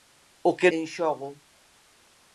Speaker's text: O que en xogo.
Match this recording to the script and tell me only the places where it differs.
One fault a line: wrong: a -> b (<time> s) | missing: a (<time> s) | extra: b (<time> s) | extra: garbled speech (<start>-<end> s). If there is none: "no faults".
no faults